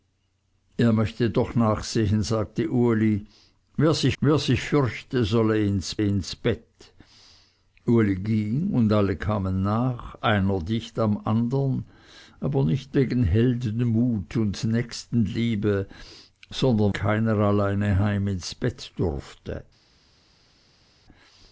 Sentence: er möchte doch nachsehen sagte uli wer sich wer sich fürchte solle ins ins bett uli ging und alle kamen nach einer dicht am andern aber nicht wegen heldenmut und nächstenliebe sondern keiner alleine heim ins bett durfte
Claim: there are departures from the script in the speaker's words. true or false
false